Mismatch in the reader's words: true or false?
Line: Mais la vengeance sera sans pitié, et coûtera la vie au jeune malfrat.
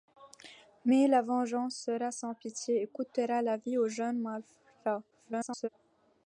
true